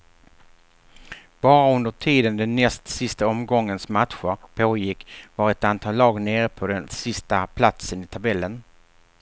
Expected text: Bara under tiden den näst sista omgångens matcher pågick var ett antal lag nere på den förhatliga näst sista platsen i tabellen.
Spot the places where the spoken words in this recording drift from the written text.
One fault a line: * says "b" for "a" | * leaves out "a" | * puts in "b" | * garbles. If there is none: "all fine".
* leaves out "förhatliga näst"